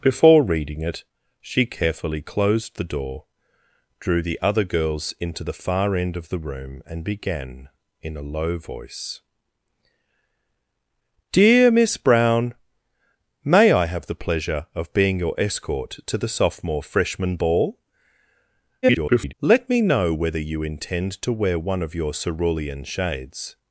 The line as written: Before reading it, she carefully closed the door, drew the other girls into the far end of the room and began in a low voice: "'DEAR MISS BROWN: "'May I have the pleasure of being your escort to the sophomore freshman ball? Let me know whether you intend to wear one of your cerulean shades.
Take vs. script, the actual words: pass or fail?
fail